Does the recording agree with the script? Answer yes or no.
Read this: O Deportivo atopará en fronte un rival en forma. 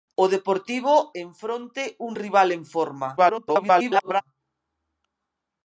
no